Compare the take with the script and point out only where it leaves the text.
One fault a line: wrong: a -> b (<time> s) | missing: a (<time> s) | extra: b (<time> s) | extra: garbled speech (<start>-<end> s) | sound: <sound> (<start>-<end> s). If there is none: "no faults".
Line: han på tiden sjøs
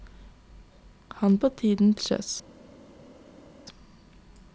no faults